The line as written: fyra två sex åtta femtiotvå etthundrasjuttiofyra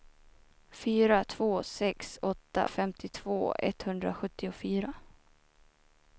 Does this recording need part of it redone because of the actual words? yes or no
no